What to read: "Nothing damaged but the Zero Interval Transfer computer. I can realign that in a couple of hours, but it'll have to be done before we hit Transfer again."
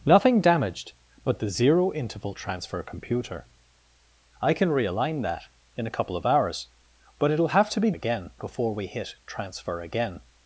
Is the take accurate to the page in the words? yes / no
no